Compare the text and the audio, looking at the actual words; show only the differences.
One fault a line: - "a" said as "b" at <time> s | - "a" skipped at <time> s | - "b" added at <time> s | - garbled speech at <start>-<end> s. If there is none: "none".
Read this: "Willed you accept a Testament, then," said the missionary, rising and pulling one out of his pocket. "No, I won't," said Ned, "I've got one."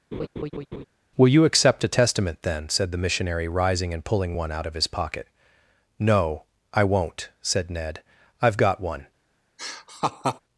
- "Willed" said as "Will" at 1.2 s